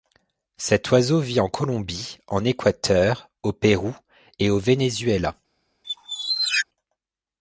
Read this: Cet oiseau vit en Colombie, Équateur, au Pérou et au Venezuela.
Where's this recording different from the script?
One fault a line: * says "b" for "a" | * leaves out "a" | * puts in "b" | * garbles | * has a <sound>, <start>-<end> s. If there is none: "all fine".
* puts in "en"
* has a squeak, 5.8-6.7 s